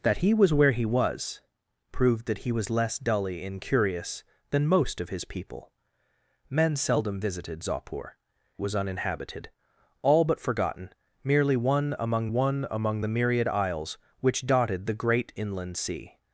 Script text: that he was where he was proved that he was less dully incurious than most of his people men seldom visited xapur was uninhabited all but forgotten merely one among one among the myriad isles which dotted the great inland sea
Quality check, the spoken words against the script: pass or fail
pass